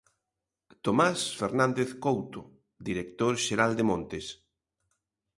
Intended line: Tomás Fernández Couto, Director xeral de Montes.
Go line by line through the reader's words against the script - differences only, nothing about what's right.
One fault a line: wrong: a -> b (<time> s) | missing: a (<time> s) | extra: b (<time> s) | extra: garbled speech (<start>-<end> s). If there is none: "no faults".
no faults